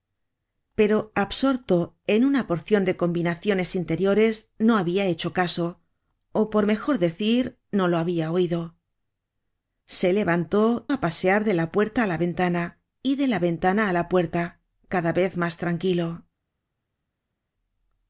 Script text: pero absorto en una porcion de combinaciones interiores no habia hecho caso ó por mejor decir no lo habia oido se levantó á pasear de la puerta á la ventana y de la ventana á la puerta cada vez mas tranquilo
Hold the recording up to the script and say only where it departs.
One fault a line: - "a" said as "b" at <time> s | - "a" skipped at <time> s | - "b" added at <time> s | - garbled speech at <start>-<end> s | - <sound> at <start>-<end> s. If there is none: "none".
none